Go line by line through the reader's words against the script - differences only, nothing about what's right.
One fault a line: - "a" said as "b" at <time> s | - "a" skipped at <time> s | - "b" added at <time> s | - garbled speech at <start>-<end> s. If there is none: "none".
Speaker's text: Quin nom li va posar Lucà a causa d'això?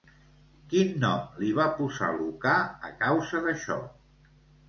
none